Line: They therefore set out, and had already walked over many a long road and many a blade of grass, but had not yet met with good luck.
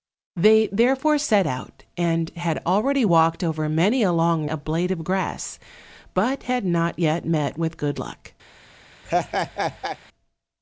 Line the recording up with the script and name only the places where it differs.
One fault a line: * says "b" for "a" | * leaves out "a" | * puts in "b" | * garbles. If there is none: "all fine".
* leaves out "road and many"